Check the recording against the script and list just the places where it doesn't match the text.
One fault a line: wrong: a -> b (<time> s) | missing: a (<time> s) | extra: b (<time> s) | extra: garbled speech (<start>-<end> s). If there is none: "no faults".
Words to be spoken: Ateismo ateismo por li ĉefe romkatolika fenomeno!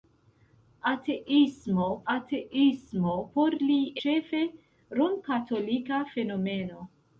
no faults